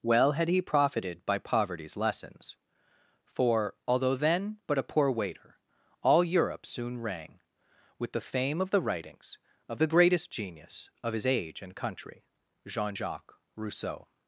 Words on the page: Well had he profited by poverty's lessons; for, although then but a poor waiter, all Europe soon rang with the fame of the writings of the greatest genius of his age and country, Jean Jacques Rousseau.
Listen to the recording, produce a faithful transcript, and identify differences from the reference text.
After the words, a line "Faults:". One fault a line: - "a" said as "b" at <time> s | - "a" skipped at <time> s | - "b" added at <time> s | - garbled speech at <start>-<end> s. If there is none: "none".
Well had he profited by poverty's lessons; for, although then but a poor waiter, all Europe soon rang with the fame of the writings of the greatest genius of his age and country, Jean Jacques Rousseau.
Faults:
none